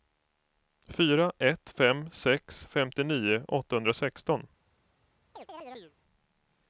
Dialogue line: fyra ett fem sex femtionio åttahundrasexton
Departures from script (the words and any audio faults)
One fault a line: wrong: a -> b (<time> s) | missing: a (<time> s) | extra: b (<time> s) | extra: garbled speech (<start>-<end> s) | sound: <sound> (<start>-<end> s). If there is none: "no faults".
sound: chirp (5.3-5.9 s)